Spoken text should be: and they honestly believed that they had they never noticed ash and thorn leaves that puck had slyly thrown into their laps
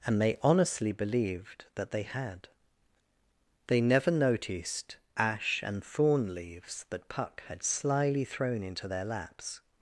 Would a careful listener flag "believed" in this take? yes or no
no